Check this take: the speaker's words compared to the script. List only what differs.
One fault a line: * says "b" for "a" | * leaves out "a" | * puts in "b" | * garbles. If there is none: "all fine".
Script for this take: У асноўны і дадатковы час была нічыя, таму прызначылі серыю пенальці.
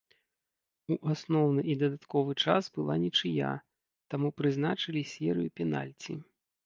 all fine